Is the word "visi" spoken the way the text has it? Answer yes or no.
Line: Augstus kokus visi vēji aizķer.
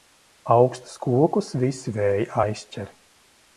yes